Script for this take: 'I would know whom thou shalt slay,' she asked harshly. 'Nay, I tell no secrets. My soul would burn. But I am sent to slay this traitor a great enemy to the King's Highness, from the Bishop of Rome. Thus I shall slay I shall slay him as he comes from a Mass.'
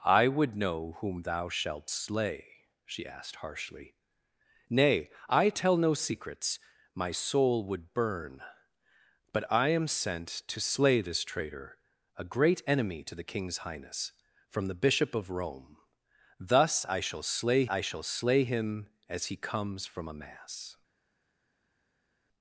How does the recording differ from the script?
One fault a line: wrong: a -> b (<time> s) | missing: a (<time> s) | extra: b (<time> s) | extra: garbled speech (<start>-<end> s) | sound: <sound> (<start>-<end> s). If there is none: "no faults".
no faults